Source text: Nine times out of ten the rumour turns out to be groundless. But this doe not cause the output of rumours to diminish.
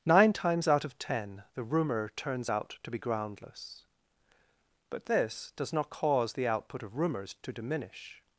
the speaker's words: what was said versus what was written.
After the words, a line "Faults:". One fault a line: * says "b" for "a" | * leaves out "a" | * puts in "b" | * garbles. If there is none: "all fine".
Nine times out of ten the rumour turns out to be groundless. But this does not cause the output of rumours to diminish.
Faults:
* says "does" for "doe"